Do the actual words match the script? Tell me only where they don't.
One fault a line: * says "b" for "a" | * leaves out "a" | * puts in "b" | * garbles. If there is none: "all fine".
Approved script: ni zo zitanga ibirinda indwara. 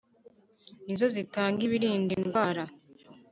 all fine